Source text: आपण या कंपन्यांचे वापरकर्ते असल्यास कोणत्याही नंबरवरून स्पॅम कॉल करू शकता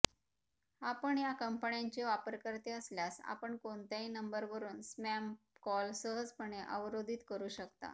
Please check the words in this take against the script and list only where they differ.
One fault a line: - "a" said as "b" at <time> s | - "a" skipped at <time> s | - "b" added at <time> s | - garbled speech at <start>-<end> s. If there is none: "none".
- "आपण" added at 3.2 s
- "सहजपणे अवरोधित" added at 5.9 s